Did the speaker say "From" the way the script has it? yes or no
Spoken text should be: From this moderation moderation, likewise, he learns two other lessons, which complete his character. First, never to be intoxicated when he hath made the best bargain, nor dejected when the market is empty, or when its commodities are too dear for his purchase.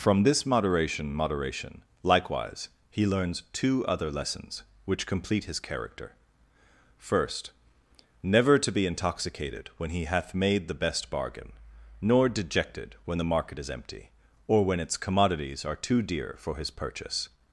yes